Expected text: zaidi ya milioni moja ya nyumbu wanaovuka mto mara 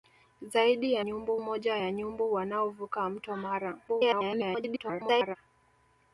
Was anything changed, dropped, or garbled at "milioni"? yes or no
yes